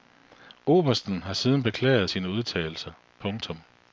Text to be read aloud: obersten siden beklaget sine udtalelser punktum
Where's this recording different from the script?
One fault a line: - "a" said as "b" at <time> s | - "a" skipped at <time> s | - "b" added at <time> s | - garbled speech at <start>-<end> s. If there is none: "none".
- "har" added at 1.2 s